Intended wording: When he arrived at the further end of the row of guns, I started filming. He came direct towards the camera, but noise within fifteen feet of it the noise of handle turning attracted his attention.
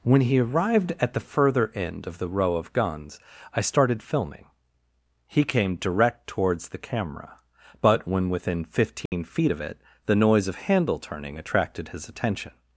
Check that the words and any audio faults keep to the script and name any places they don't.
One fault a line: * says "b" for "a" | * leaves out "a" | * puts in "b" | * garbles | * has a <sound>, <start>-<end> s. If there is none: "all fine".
* says "when" for "noise"
* has a dropout, 9.1-9.1 s